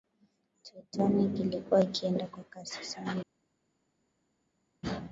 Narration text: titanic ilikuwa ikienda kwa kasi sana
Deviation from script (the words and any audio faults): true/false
false